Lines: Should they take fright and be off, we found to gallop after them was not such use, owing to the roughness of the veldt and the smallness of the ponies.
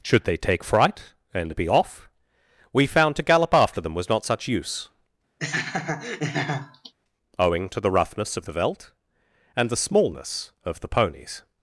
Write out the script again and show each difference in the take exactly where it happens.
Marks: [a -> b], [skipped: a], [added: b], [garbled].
Should they take fright and be off, we found to gallop after them was not such use, owing to the roughness of the veldt and the smallness of the ponies.